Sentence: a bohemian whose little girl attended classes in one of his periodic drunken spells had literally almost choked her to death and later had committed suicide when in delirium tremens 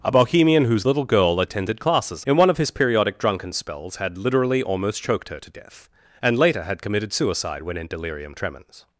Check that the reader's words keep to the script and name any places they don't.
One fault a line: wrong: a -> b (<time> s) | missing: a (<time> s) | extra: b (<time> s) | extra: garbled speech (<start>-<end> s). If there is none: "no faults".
no faults